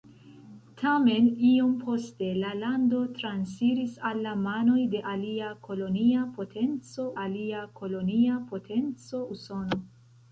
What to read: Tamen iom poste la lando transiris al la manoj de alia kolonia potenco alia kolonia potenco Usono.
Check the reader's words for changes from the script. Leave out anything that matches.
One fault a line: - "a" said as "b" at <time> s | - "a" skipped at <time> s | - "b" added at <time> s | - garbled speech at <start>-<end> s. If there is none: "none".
none